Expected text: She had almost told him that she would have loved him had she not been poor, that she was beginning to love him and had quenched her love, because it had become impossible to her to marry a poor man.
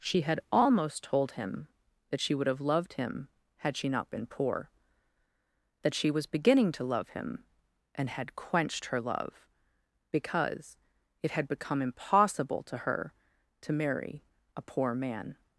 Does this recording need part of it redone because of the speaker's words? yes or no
no